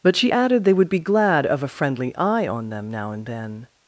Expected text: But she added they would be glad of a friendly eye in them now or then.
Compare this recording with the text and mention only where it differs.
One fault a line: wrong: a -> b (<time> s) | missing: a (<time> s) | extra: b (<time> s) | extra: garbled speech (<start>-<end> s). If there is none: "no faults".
wrong: in -> on (2.5 s)
wrong: or -> and (3.1 s)